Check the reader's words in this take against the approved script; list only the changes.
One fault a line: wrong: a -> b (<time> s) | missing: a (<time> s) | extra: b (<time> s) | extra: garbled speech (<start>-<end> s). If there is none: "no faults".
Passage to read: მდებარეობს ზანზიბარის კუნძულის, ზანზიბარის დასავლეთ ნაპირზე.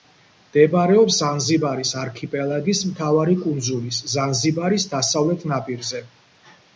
extra: არქიპელაგის მთავარი (2.0 s)